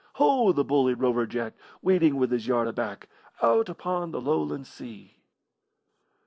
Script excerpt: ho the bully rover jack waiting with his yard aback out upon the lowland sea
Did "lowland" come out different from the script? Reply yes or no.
no